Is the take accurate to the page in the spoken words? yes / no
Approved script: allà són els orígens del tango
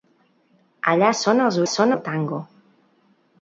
no